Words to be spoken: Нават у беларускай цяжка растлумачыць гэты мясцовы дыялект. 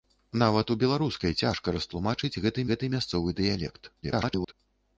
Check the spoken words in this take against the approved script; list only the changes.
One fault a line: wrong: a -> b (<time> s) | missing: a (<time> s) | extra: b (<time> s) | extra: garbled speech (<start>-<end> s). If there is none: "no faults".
extra: гэты (2.7 s)
extra: garbled speech (4.0-4.5 s)